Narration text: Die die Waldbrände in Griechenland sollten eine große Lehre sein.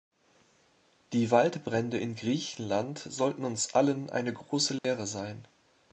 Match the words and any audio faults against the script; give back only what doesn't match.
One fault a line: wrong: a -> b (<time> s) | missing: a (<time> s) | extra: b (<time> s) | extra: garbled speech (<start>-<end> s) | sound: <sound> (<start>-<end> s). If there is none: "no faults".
missing: die (1.3 s)
extra: uns allen (3.4 s)
sound: dropout (4.8-4.8 s)